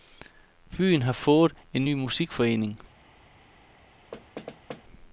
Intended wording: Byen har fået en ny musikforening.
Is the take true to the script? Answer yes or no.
yes